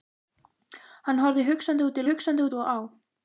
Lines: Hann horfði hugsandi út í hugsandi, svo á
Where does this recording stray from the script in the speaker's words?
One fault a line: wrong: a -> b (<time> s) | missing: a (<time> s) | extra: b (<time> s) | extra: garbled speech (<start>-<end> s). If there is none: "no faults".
no faults